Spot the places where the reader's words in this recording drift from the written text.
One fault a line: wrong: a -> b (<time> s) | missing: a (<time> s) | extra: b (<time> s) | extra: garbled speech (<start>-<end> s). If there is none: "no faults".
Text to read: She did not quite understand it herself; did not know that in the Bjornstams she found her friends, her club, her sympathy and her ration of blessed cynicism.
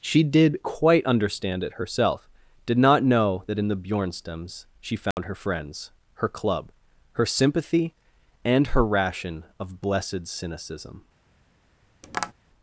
missing: not (0.6 s)